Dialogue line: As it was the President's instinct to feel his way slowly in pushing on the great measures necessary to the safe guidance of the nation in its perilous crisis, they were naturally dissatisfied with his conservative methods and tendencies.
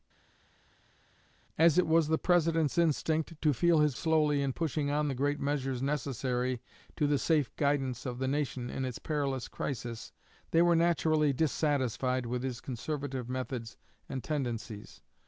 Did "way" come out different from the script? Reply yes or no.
yes